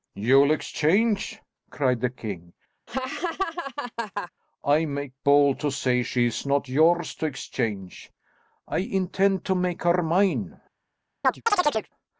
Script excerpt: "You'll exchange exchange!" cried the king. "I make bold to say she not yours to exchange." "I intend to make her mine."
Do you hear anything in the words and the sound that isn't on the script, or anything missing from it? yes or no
yes